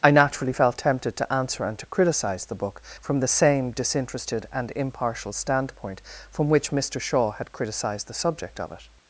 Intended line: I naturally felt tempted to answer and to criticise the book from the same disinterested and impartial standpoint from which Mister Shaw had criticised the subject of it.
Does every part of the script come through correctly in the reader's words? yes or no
yes